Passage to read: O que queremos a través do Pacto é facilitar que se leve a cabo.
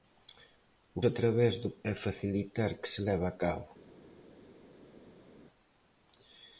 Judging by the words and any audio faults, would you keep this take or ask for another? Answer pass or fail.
fail